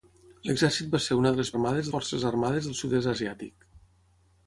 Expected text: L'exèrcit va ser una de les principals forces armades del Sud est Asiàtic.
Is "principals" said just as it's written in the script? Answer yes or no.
no